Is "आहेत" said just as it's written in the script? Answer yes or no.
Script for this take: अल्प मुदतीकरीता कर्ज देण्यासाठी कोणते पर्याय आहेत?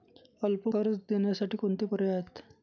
yes